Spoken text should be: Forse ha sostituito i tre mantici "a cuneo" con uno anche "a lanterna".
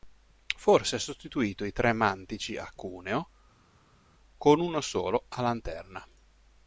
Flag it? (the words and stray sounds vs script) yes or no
yes